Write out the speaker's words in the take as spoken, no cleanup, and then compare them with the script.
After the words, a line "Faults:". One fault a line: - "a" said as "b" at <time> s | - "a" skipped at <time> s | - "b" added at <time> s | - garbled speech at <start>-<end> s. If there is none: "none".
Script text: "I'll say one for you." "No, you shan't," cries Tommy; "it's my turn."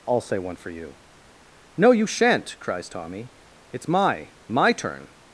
"I'll say one for you." "No, you shan't," cries Tommy; "it's my my turn."
Faults:
- "my" added at 4.5 s